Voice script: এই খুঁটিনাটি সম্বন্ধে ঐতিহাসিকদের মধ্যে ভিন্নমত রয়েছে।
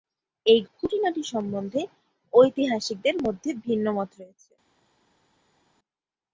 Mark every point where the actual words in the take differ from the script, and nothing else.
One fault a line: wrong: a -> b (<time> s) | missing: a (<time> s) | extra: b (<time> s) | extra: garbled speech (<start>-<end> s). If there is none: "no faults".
no faults